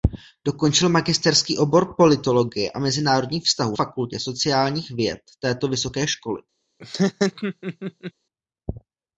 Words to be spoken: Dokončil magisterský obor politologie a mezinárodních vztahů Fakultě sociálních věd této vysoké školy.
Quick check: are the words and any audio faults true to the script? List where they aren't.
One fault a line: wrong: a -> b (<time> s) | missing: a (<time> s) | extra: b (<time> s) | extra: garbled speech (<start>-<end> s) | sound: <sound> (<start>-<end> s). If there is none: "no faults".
sound: laugh (6.8-8.1 s)